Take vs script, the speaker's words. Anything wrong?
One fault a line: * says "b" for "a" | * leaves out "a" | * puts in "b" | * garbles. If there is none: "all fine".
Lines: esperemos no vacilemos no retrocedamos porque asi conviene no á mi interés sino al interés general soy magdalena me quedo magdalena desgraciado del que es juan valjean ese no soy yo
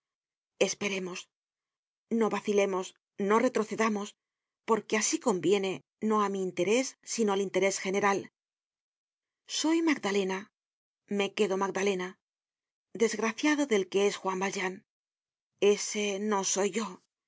all fine